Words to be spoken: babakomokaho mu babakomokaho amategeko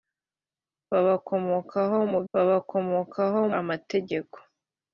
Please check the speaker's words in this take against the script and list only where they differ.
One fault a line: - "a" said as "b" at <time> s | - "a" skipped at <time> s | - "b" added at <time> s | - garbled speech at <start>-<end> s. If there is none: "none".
none